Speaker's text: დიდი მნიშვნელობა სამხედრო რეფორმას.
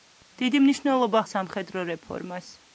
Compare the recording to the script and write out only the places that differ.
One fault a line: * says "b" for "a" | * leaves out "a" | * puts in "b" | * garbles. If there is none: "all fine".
all fine